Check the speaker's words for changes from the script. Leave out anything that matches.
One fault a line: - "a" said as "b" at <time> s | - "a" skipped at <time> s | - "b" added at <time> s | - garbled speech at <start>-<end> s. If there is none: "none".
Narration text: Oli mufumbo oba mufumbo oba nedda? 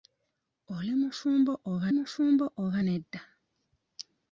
none